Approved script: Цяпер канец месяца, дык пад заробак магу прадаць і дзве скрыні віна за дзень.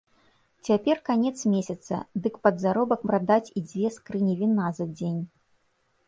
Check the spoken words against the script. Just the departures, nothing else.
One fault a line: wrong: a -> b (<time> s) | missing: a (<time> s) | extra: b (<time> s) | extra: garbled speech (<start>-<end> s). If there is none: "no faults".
missing: магу (3.0 s)